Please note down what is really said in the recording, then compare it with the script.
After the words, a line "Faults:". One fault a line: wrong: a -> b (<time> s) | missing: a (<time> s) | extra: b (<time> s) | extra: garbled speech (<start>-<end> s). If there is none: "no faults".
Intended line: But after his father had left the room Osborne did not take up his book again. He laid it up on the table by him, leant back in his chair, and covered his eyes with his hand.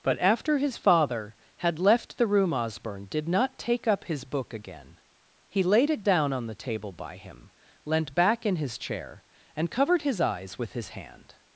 But after his father had left the room Osborne did not take up his book again. He laid it down on the table by him, leant back in his chair, and covered his eyes with his hand.
Faults:
wrong: up -> down (6.0 s)